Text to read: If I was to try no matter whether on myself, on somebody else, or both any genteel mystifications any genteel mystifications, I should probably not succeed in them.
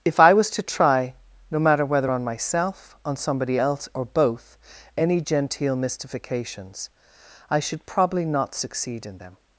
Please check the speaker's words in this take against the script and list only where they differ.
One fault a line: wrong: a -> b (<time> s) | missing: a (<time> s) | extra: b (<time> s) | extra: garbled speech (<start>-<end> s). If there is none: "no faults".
missing: any genteel mystifications (6.9 s)